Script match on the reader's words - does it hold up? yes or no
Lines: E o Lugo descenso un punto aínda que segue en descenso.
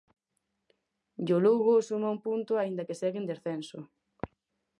no